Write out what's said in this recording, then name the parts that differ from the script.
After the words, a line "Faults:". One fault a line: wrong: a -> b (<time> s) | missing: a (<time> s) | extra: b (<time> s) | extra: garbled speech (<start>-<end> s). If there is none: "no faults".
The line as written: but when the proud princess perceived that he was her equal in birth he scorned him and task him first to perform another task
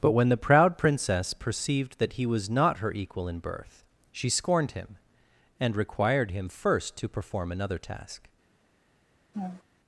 but when the proud princess perceived that he was not her equal in birth she scorned him and required him first to perform another task
Faults:
extra: not (2.5 s)
wrong: he -> she (4.1 s)
wrong: task -> required (5.8 s)